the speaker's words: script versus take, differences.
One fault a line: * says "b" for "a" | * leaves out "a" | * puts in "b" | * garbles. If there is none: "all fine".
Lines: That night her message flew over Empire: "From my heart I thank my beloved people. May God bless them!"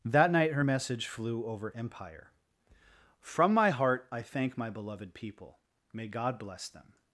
all fine